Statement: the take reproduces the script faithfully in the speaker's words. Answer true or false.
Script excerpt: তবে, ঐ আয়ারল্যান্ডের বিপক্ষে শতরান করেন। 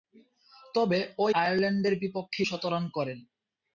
true